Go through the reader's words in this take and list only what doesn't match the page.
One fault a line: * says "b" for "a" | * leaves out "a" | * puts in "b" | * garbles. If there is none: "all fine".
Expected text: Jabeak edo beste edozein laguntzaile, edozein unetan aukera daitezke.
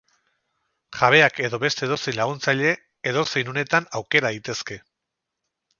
all fine